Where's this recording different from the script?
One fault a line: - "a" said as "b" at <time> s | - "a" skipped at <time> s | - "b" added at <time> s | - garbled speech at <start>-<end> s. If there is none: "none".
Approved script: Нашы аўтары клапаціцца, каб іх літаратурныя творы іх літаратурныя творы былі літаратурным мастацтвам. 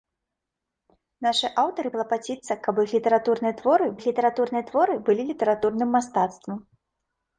none